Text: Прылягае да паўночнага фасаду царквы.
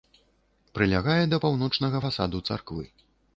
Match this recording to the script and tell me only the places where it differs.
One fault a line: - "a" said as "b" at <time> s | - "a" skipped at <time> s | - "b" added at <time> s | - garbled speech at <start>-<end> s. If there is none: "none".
none